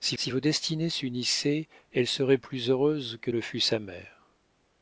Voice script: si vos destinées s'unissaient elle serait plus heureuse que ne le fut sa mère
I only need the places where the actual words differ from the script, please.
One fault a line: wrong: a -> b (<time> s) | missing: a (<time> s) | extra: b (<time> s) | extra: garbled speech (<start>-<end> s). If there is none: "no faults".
extra: si (0.2 s)
missing: ne (3.3 s)